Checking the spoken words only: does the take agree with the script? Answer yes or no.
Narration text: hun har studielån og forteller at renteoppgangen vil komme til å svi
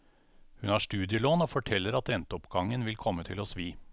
yes